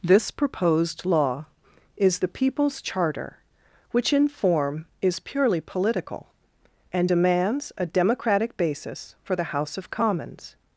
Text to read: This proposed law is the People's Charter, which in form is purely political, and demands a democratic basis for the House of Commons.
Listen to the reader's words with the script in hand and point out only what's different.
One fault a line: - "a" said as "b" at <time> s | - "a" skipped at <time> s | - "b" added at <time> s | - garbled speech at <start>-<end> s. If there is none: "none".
none